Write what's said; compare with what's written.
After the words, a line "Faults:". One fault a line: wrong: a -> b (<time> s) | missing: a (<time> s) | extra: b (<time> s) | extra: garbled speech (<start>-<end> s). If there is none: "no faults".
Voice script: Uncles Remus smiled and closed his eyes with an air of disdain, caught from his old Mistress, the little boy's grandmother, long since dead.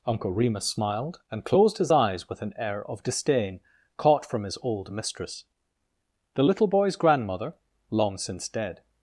Uncle Remus smiled and closed his eyes with an air of disdain, caught from his old Mistress, the little boy's grandmother, long since dead.
Faults:
wrong: Uncles -> Uncle (0.1 s)